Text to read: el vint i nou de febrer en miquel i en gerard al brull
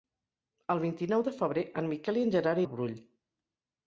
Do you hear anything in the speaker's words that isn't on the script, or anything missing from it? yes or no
no